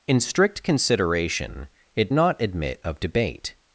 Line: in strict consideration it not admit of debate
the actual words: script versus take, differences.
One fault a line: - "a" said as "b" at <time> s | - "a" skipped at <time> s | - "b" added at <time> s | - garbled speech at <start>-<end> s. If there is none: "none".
none